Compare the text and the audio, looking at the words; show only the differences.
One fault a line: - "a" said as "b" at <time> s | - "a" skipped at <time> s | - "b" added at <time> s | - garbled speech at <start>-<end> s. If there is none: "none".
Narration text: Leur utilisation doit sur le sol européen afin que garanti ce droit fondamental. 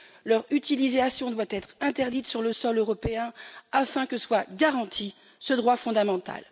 - "être interdite" added at 1.5 s
- "soit" added at 4.2 s